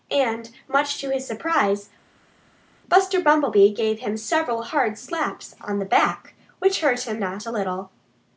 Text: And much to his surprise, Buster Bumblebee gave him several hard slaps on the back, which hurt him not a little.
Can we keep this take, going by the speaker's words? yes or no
yes